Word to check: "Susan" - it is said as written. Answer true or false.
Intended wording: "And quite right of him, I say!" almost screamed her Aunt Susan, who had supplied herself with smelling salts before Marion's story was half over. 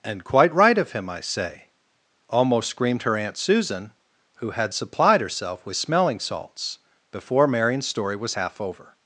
true